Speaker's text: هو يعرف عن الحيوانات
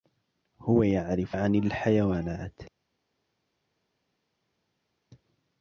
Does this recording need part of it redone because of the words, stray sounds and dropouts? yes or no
no